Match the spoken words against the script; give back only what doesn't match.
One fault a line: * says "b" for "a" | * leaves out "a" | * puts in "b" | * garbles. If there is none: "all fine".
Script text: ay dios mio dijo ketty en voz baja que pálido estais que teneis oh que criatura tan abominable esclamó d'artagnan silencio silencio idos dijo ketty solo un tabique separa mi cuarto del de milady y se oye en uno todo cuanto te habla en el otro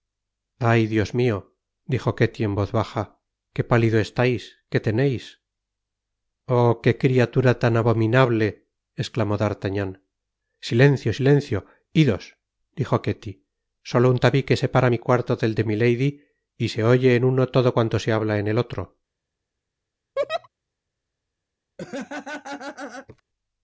* says "se" for "te"